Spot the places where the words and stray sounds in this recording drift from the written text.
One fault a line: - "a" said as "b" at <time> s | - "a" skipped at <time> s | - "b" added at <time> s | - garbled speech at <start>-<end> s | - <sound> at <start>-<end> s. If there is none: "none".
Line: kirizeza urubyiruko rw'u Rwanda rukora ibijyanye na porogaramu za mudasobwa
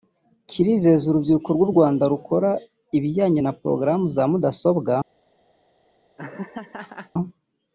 - laugh at 6.2-7.1 s